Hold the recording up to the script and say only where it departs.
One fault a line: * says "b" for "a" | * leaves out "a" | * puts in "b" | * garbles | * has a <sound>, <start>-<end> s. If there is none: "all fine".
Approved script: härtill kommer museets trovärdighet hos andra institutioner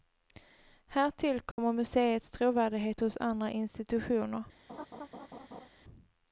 * has a dropout, 1.5-1.6 s
* has a laugh, 4.7-5.7 s